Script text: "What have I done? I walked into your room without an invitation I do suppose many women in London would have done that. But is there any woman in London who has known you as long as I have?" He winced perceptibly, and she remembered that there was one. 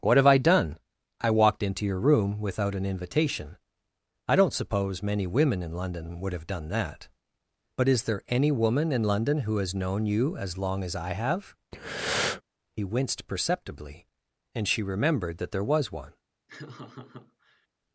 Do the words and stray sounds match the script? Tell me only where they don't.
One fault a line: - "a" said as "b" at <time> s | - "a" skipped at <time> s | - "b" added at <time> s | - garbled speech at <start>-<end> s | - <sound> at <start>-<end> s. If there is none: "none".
- "do" said as "don't" at 4.3 s
- breath at 11.7-12.4 s
- laugh at 16.5-17.7 s